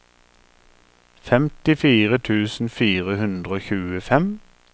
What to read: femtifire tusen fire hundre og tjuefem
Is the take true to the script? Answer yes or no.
yes